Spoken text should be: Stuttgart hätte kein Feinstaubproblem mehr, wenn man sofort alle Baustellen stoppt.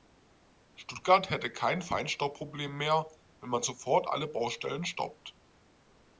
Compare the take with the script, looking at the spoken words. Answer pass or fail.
pass